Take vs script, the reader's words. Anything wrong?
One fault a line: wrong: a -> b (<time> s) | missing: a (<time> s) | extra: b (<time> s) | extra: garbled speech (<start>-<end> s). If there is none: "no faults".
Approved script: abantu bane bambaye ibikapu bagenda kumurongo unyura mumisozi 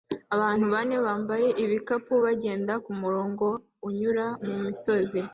no faults